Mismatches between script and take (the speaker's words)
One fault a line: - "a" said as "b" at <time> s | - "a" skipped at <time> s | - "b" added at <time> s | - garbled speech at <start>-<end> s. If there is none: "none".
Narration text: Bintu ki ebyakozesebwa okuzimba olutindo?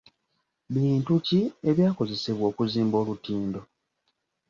none